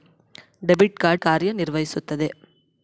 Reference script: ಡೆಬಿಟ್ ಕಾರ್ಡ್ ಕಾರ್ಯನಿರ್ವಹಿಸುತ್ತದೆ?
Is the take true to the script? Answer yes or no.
yes